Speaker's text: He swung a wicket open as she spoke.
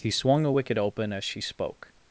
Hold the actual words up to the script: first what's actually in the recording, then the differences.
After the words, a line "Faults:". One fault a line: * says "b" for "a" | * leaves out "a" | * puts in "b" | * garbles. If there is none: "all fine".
He swung a wicket open as she spoke.
Faults:
all fine